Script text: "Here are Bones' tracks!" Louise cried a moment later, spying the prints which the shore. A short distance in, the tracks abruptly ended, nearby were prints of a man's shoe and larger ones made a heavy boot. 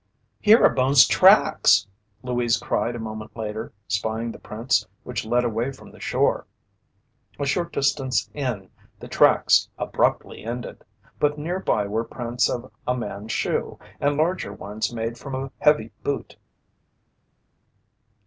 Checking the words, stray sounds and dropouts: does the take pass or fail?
fail